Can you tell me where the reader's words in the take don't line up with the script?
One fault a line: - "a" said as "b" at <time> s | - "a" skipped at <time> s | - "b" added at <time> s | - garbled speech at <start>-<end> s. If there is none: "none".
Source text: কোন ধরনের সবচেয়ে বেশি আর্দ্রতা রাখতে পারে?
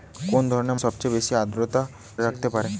none